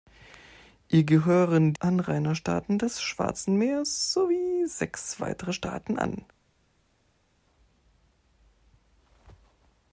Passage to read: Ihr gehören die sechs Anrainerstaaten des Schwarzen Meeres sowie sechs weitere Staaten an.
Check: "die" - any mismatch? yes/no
yes